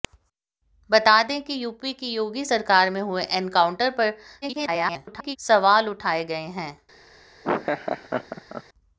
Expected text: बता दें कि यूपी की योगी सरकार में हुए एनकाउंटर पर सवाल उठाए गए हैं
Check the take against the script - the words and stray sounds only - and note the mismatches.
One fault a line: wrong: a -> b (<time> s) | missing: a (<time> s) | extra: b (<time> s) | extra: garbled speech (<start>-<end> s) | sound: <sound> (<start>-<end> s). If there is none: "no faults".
extra: garbled speech (4.4-5.4 s)
sound: laugh (7.4-8.6 s)